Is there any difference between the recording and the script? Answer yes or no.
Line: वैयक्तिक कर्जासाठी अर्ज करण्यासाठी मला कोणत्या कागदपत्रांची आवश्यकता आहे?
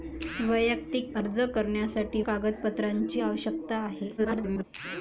yes